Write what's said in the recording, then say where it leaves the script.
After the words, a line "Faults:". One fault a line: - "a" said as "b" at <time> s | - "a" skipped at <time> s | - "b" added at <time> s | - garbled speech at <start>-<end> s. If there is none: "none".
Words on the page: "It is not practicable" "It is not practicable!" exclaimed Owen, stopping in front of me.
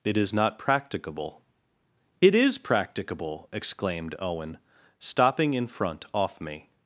"It is not practicable" "It is practicable!" exclaimed Owen, stopping in front off me.
Faults:
- "not" skipped at 2.6 s
- "of" said as "off" at 6.1 s